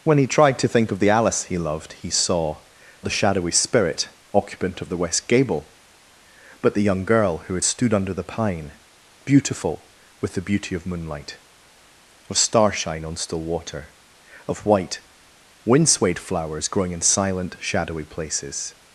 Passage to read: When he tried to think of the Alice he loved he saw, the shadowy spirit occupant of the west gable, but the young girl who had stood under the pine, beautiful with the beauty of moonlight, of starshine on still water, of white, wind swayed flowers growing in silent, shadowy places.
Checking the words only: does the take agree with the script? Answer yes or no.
yes